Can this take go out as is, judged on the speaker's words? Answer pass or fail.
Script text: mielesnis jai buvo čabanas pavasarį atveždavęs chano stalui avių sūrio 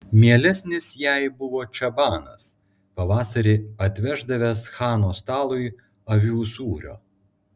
pass